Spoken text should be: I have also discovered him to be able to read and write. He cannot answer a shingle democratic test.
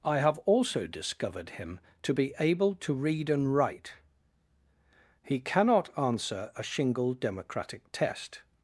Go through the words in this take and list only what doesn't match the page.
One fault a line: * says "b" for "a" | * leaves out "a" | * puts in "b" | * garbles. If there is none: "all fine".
all fine